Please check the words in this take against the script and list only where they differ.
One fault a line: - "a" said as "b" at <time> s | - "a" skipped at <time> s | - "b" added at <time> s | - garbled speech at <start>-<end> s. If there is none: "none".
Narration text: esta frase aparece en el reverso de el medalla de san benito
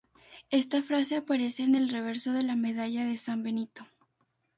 - "el" said as "la" at 2.4 s